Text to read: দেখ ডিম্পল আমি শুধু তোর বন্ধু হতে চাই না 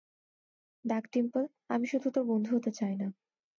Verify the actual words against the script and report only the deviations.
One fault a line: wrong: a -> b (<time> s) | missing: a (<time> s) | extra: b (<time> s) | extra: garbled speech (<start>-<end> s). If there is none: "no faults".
no faults